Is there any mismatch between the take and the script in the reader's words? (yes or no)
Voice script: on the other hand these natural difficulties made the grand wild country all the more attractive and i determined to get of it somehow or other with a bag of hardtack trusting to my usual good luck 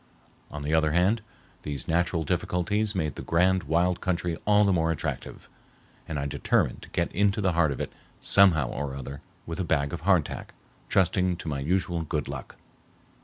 yes